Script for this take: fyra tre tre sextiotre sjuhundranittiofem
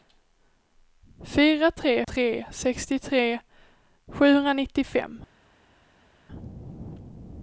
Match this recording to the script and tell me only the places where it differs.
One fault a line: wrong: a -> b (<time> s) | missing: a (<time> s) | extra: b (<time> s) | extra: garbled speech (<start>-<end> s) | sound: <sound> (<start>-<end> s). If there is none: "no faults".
no faults